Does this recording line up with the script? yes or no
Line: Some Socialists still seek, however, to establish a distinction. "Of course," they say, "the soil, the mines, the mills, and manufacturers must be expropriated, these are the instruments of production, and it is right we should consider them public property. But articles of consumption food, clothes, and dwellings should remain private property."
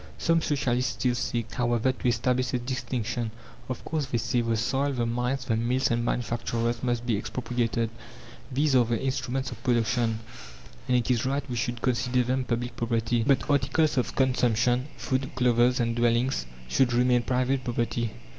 yes